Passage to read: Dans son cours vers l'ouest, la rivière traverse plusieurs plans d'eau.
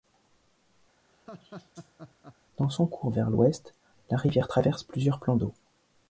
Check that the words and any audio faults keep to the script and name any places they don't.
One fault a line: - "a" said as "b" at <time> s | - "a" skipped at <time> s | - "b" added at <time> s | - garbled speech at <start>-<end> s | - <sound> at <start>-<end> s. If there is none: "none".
- laugh at 1.1-2.4 s